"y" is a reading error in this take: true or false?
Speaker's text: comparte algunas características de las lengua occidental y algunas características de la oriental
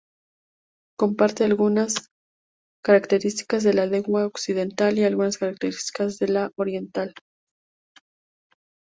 false